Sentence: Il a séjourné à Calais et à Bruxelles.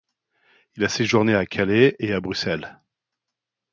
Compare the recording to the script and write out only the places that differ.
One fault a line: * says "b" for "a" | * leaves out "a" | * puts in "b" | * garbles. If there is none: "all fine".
all fine